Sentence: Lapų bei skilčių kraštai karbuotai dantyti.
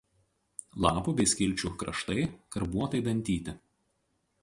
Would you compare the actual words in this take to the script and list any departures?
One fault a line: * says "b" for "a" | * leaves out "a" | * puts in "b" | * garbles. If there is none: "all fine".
all fine